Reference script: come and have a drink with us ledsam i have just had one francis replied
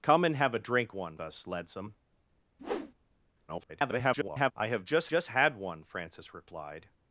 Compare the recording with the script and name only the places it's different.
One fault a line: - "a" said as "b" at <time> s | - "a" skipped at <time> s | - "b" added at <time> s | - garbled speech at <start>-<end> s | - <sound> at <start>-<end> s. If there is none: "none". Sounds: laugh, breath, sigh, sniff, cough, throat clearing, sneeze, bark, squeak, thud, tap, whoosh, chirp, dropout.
- "with" said as "one" at 0.9 s
- whoosh at 2.6-2.9 s
- garbled speech at 3.5-4.5 s
- "just" added at 5.0 s